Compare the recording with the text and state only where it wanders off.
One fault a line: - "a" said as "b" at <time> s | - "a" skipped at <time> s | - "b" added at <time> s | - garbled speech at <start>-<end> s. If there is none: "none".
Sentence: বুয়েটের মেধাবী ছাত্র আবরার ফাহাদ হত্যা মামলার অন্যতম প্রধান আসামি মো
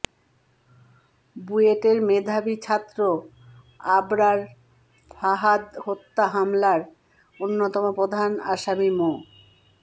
none